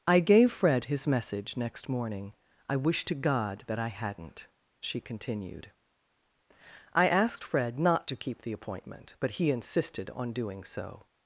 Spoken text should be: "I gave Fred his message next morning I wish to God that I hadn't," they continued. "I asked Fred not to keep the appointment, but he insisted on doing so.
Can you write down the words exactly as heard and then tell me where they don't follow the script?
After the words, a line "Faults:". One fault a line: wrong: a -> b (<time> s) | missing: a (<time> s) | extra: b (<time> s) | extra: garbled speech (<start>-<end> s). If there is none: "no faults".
"I gave Fred his message next morning I wish to God that I hadn't," she continued. "I asked Fred not to keep the appointment, but he insisted on doing so.
Faults:
wrong: they -> she (4.8 s)